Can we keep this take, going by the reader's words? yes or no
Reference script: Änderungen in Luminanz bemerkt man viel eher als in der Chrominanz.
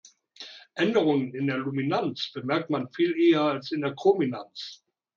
no